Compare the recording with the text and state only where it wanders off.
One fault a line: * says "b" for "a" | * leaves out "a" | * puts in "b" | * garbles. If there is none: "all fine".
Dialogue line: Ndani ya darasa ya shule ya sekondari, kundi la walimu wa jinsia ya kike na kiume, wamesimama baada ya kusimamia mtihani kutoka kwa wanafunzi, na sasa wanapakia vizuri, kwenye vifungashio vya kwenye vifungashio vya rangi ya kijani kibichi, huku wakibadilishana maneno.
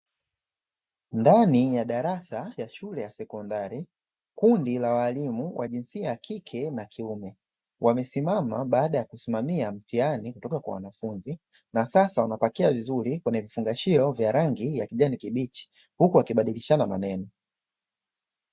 * leaves out "kwenye vifungashio vya"